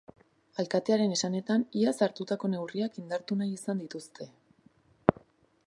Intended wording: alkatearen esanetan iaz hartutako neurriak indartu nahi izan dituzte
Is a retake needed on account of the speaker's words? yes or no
no